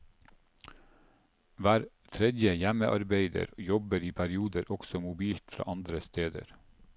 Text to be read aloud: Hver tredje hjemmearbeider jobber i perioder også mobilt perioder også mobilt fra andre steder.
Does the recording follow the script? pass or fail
fail